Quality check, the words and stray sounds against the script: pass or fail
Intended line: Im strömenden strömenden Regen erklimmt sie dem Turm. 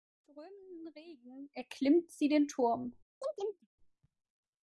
fail